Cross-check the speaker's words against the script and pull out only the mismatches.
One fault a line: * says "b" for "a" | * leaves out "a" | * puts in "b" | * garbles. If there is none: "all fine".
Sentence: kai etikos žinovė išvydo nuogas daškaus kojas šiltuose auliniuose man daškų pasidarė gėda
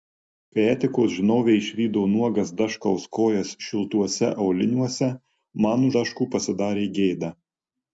all fine